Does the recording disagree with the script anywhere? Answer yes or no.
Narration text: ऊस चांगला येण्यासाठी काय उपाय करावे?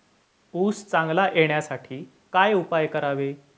no